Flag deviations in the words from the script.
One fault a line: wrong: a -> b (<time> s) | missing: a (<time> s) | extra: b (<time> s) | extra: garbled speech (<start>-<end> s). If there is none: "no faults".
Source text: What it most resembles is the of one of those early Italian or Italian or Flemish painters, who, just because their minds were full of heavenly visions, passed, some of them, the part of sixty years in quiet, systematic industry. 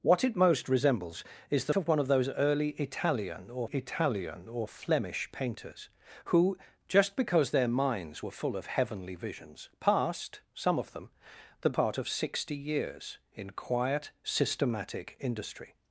no faults